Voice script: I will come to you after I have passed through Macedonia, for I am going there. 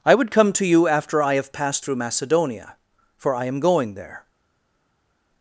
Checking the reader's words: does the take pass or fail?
fail